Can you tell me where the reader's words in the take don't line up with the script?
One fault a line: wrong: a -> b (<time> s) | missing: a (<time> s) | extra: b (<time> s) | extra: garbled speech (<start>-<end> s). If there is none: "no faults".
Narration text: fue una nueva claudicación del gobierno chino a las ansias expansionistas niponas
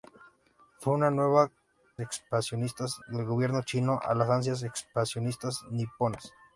wrong: claudicación -> expansionistas (2.0 s)